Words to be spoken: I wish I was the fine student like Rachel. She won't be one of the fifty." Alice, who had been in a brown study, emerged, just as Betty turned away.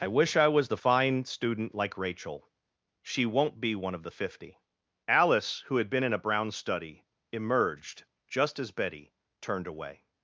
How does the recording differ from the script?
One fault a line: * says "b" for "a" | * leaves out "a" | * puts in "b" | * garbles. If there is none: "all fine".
all fine